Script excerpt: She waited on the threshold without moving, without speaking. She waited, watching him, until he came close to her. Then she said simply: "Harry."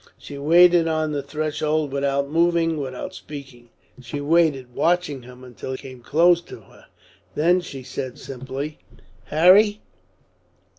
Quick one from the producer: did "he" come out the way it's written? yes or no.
no